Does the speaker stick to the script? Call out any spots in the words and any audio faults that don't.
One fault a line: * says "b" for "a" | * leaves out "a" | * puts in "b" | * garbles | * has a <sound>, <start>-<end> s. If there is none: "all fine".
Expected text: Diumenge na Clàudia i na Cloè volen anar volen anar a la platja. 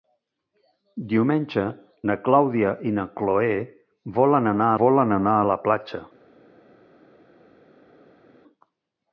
all fine